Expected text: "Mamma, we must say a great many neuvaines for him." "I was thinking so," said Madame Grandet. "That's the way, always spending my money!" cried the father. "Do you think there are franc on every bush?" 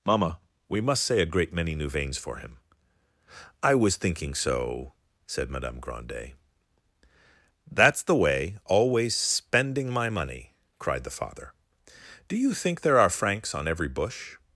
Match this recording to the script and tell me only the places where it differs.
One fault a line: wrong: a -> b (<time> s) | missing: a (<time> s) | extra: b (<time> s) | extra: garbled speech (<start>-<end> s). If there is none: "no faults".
wrong: franc -> francs (13.1 s)